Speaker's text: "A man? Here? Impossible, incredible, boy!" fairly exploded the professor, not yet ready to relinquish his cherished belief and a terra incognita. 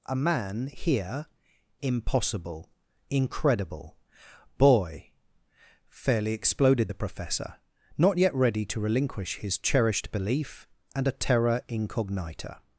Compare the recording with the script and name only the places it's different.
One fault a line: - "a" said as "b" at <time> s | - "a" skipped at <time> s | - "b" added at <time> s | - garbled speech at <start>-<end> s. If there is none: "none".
none